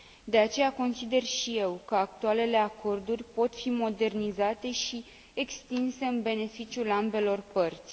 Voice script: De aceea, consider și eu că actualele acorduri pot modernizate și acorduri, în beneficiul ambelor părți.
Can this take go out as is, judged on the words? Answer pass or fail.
fail